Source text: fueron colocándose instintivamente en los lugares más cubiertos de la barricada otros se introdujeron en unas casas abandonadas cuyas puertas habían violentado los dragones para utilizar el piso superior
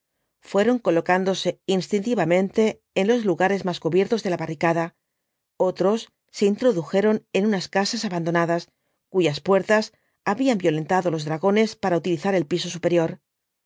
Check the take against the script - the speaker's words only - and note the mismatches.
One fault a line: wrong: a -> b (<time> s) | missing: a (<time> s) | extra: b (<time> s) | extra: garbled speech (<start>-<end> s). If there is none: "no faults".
no faults